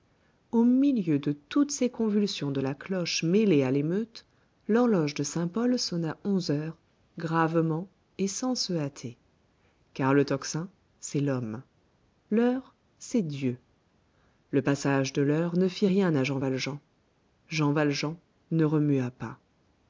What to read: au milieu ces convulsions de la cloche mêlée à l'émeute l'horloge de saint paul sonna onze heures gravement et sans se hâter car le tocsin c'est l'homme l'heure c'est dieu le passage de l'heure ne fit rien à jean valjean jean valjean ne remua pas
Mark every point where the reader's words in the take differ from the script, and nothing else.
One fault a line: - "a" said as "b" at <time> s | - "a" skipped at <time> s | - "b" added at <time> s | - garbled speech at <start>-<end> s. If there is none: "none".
- "de toutes" added at 1.2 s